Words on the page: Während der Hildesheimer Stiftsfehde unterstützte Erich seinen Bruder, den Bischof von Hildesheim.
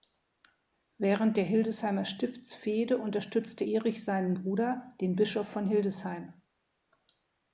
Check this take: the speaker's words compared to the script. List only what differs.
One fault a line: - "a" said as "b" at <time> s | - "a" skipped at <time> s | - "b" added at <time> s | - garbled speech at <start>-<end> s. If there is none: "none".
none